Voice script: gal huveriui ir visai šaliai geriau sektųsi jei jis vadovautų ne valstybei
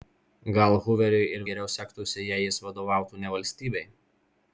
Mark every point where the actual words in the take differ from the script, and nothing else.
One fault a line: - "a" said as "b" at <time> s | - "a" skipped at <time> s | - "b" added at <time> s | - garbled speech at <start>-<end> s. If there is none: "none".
- "visai šaliai" skipped at 1.4 s